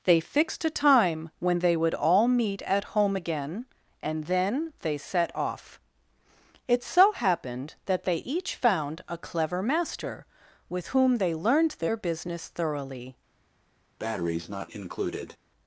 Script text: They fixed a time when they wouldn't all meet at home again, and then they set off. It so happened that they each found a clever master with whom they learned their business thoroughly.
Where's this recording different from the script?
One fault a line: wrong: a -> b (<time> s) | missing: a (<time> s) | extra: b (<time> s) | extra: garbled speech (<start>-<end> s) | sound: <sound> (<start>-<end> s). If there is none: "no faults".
wrong: wouldn't -> would (1.8 s)
sound: breath (14.0-15.4 s)